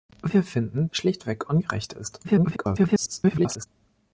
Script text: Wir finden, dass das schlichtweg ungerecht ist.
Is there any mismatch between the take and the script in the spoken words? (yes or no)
yes